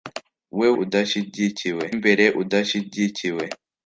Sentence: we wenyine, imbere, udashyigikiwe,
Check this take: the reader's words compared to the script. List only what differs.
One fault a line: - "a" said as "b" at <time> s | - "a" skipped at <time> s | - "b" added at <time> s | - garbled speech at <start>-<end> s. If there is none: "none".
- "wenyine" said as "udashyigikiwe" at 0.8 s